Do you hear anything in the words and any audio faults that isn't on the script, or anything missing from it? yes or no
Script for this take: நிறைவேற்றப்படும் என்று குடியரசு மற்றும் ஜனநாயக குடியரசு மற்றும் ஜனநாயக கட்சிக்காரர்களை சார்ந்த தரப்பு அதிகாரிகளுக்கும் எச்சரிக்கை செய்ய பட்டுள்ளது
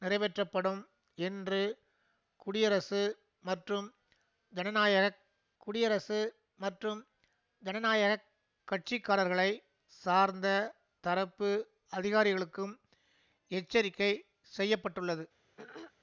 yes